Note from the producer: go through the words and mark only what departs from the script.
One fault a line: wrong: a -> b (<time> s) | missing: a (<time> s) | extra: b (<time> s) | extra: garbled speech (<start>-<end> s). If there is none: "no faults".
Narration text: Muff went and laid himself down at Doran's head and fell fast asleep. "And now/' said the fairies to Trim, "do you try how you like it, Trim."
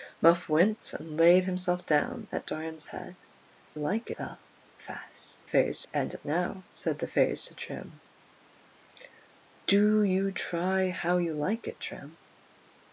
wrong: and -> like (3.8 s)
wrong: asleep -> fairies (5.4 s)